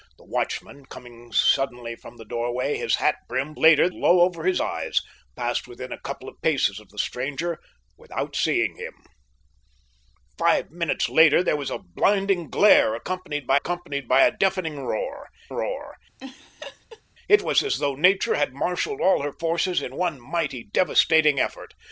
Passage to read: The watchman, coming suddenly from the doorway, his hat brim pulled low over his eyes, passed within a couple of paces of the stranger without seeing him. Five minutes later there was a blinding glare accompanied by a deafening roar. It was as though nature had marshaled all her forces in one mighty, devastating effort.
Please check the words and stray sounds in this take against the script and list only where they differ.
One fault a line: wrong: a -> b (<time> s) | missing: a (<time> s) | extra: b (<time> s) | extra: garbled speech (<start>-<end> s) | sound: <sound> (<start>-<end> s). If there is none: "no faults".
wrong: pulled -> later (3.6 s)
extra: accompanied by (13.5 s)
extra: roar (15.5 s)
sound: laugh (16.2-17.0 s)